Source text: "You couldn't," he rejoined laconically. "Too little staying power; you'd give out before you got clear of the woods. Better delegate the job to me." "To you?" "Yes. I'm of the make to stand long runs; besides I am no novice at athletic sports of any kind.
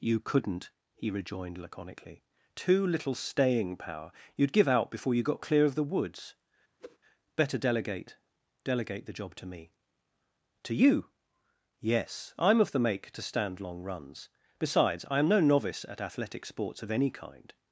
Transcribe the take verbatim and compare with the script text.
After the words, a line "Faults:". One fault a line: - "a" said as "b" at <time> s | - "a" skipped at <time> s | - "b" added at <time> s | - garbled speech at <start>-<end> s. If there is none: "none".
"You couldn't," he rejoined laconically. "Too little staying power; you'd give out before you got clear of the woods. Better delegate delegate the job to me." "To you?" "Yes. I'm of the make to stand long runs; besides I am no novice at athletic sports of any kind.
Faults:
- "delegate" added at 8.6 s